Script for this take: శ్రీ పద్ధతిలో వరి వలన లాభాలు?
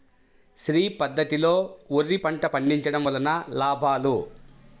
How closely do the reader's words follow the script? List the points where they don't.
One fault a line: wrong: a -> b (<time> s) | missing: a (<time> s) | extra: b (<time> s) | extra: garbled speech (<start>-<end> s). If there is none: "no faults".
extra: పంట పండించడం (2.1 s)